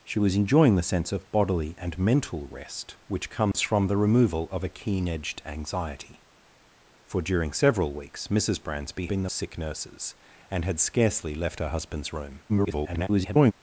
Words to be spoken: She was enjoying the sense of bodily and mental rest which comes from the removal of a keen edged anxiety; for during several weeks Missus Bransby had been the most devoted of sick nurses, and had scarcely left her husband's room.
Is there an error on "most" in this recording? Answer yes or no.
yes